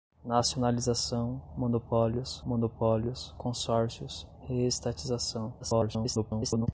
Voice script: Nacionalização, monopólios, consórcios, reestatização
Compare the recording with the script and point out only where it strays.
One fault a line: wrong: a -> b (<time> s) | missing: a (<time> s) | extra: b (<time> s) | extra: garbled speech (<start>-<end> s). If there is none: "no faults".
extra: monopólios (2.5 s)
extra: garbled speech (5.6-6.7 s)